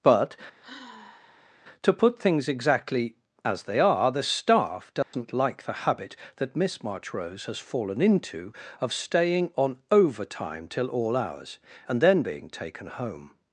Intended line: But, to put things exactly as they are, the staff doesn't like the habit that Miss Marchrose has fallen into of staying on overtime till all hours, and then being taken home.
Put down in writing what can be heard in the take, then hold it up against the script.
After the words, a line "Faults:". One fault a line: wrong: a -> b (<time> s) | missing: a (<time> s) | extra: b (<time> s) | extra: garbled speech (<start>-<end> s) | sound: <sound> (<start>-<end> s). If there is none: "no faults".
But, to put things exactly as they are, the staff doesn't like the habit that Miss Marchrose has fallen into of staying on overtime till all hours, and then being taken home.
Faults:
sound: sigh (0.6-1.6 s)
sound: dropout (5.0-5.1 s)